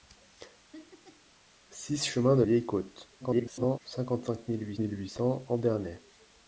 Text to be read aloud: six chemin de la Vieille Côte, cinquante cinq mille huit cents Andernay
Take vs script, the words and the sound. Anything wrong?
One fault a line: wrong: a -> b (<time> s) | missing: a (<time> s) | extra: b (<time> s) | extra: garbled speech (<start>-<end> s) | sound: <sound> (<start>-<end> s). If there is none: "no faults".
sound: laugh (0.7-1.3 s)
missing: la (2.4 s)
extra: garbled speech (3.2-3.8 s)
extra: mille huit (4.8 s)